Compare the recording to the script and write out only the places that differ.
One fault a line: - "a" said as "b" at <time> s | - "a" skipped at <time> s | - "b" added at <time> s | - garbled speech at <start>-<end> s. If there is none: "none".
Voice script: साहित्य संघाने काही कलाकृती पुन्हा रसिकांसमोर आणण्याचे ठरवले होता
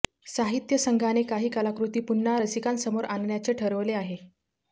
- "होता" said as "आहे" at 3.9 s